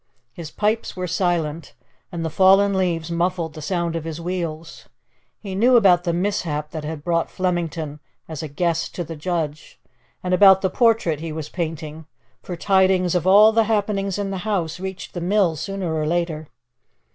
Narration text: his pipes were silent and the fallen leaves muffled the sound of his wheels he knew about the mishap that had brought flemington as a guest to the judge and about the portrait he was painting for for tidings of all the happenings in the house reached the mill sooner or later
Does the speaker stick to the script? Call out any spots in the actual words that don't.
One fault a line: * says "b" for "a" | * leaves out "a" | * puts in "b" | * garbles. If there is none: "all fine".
* leaves out "for"